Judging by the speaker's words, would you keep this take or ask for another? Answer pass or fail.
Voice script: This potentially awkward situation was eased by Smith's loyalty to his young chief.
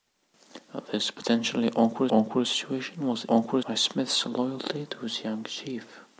fail